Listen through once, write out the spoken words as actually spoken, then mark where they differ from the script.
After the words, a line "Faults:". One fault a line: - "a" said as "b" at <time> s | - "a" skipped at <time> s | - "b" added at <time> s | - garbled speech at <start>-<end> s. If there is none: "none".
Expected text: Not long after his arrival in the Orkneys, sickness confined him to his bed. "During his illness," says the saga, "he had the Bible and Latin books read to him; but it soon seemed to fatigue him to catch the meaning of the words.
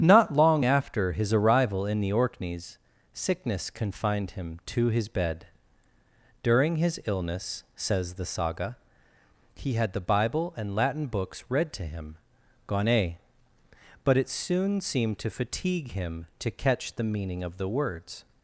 Not long after his arrival in the Orkneys, sickness confined him to his bed. "During his illness," says the saga, "he had the Bible and Latin books read to him; gone but it soon seemed to fatigue him to catch the meaning of the words.
Faults:
- "gone" added at 12.7 s